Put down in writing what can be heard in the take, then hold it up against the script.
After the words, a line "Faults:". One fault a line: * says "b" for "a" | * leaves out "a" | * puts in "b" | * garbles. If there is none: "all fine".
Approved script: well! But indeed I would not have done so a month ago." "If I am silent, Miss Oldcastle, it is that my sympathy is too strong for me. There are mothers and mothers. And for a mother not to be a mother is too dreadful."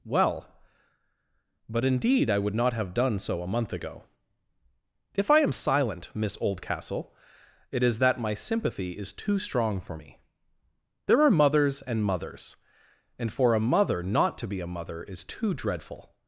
well! But indeed I would not have done so a month ago." "If I am silent, Miss Oldcastle, it is that my sympathy is too strong for me. There are mothers and mothers. And for a mother not to be a mother is too dreadful."
Faults:
all fine